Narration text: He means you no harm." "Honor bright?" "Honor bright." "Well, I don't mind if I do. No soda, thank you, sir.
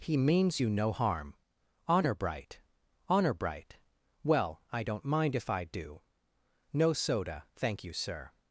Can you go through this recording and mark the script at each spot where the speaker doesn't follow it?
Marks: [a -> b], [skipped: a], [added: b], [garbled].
He means you no harm." "Honor bright?" "Honor bright." "Well, I don't mind if I do. No soda, thank you, sir.